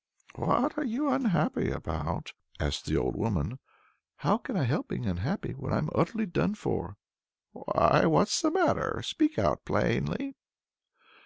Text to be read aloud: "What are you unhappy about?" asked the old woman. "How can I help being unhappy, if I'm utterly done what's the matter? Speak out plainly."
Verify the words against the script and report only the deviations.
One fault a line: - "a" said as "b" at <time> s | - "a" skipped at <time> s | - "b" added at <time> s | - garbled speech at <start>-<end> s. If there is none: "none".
- "if" said as "when" at 5.5 s
- "for Why" added at 6.6 s